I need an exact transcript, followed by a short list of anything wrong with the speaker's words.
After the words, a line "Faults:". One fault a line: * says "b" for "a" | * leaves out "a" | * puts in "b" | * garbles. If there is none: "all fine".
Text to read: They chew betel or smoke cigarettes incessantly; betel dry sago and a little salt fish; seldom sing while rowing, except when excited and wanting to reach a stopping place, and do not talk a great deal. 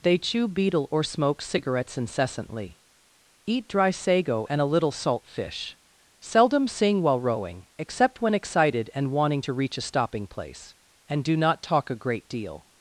They chew betel or smoke cigarettes incessantly; eat dry sago and a little salt fish; seldom sing while rowing, except when excited and wanting to reach a stopping place, and do not talk a great deal.
Faults:
* says "eat" for "betel"